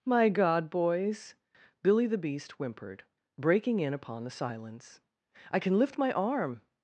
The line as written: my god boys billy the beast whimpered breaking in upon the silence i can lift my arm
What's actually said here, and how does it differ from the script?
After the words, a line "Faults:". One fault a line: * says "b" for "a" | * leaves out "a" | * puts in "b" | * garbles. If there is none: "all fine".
my god boys billy the beast whimpered breaking in upon the silence i can lift my arm
Faults:
all fine